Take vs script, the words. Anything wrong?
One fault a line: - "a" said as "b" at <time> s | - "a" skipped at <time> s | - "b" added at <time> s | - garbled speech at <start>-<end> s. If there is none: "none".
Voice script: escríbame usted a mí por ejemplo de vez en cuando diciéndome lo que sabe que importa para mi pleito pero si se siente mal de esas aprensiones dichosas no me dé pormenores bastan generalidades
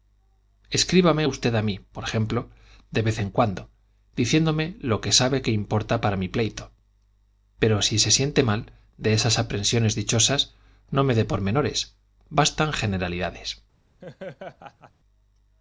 none